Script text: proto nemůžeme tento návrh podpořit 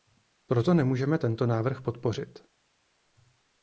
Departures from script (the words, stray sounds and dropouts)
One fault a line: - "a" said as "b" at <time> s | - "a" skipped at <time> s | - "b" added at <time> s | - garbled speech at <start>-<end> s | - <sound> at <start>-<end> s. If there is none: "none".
none